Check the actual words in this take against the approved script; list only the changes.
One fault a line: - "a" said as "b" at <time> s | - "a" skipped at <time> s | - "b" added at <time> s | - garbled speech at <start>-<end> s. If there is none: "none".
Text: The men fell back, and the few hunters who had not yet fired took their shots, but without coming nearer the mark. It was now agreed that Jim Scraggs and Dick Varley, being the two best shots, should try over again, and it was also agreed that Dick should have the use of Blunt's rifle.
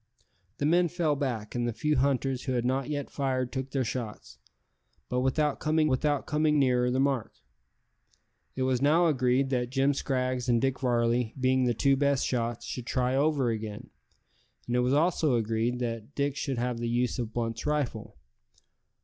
- "without coming" added at 5.8 s